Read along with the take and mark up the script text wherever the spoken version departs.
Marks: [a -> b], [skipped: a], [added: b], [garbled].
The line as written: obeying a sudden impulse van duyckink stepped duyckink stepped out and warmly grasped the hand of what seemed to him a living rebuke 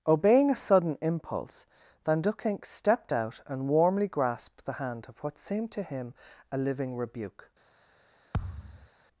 obeying a sudden impulse van duyckink stepped [skipped: duyckink stepped] out and warmly grasped the hand of what seemed to him a living rebuke